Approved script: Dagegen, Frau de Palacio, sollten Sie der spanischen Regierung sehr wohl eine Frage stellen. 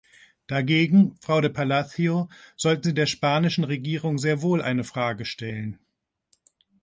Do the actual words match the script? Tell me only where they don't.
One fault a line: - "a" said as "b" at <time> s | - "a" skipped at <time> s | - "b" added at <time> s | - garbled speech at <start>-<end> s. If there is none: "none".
none